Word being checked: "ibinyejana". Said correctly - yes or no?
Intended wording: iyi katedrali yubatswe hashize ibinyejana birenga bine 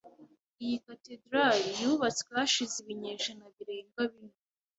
yes